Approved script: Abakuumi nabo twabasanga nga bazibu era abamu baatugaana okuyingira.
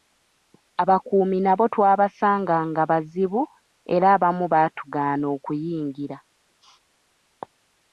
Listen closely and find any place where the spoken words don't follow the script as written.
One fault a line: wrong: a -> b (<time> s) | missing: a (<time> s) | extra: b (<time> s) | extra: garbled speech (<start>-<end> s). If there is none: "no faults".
no faults